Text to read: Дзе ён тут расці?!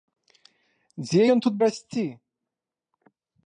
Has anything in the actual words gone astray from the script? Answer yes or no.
no